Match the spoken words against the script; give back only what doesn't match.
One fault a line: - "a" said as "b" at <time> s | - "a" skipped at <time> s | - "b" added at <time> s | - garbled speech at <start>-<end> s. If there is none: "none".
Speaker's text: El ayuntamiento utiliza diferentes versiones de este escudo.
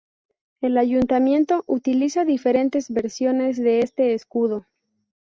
none